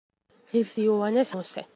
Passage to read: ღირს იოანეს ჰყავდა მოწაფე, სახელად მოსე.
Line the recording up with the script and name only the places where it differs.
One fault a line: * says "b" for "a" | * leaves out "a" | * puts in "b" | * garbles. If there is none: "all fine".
* leaves out "ჰყავდა მოწაფე სახელად"